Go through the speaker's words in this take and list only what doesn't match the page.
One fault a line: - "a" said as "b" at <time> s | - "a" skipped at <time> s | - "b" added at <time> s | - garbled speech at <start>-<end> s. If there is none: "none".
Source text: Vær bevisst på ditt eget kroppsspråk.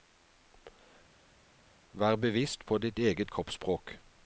none